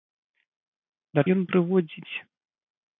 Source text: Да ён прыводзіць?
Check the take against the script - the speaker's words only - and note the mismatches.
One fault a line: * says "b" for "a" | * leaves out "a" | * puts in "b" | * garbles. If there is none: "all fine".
all fine